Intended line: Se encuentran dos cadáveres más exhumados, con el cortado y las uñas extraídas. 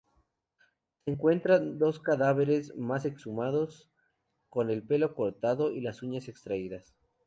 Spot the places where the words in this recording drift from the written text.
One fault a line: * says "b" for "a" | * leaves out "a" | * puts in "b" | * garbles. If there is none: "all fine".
* puts in "pelo"